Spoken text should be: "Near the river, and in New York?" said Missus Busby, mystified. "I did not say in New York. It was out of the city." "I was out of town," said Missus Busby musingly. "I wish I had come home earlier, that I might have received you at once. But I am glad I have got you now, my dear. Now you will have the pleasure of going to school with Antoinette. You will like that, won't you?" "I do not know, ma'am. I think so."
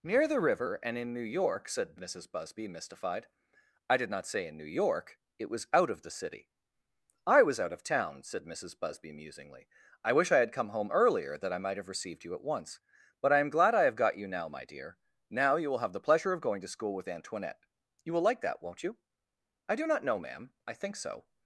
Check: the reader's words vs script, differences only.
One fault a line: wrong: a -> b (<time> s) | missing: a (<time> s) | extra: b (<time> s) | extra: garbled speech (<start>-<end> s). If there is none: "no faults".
no faults